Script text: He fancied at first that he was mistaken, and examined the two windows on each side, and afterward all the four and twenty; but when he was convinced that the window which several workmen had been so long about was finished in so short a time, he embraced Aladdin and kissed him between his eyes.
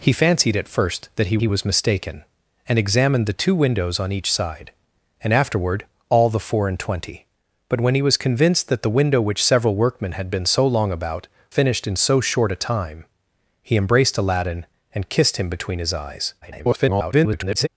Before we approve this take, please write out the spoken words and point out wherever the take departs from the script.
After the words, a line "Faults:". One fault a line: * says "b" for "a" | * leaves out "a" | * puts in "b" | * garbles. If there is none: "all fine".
He fancied at first that he he was mistaken, and examined the two windows on each side, and afterward all the four and twenty; but when he was convinced that the window which several workmen had been so long about finished in so short a time, he embraced Aladdin and kissed him between his eyes. [garbled]
Faults:
* puts in "he"
* leaves out "was"
* garbles